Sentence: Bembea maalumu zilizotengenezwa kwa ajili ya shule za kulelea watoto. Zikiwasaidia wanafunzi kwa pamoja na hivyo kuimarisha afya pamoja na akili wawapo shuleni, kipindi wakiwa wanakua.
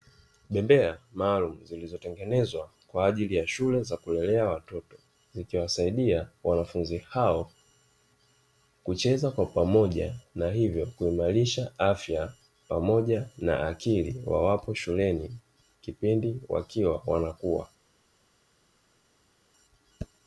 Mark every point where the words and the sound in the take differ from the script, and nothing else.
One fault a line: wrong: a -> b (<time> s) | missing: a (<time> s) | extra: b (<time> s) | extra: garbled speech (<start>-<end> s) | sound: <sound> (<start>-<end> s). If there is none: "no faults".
extra: hao kucheza (7.0 s)